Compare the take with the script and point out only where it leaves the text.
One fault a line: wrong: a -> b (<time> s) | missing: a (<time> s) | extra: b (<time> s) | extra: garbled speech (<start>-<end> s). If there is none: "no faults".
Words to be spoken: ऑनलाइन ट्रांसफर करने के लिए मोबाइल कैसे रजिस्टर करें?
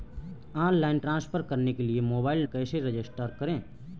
no faults